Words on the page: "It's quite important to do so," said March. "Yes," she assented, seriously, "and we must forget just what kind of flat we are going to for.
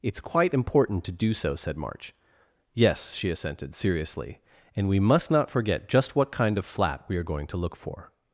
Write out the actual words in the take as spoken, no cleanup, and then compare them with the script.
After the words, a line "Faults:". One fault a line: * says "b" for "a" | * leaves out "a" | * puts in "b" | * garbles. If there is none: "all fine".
"It's quite important to do so," said March. "Yes," she assented, seriously, "and we must not forget just what kind of flat we are going to look for.
Faults:
* puts in "not"
* puts in "look"